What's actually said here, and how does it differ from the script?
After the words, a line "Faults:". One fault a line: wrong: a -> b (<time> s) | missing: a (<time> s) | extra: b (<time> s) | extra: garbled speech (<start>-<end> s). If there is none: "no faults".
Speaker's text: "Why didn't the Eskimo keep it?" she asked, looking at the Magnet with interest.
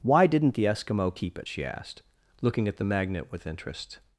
"Why didn't the Eskimo keep it?" she asked, looking at the Magnet with interest.
Faults:
no faults